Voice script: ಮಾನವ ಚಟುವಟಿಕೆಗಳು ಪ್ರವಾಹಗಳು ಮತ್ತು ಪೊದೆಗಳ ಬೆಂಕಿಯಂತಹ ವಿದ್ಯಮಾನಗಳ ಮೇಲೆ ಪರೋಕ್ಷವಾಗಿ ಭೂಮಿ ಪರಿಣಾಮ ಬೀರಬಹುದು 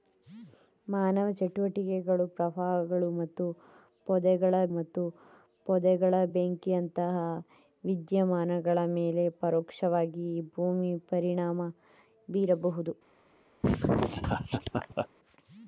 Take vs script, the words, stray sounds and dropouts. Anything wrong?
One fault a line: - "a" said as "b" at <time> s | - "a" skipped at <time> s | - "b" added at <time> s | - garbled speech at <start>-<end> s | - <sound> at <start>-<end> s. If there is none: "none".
- "ಮತ್ತು ಪೊದೆಗಳ" added at 4.7 s
- laugh at 13.6-15.1 s